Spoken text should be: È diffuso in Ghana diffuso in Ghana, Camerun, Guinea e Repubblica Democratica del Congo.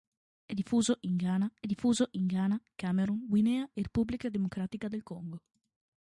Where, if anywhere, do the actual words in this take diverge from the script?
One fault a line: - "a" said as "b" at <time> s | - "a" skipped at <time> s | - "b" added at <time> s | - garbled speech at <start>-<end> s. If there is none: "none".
none